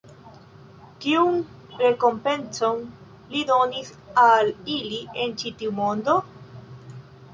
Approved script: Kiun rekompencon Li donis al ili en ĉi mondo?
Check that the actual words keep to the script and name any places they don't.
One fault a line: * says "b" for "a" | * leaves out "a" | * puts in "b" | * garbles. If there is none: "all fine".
* puts in "tiu"